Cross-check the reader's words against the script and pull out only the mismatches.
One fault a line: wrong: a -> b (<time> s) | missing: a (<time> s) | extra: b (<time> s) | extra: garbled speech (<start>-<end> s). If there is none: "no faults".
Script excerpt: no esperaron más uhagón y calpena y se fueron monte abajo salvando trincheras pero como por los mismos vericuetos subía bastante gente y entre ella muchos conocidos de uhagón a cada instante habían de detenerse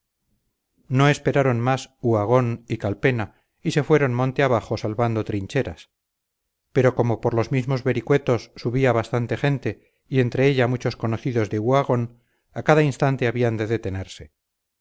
no faults